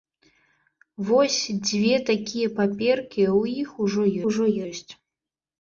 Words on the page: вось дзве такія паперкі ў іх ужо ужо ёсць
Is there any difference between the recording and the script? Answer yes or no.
no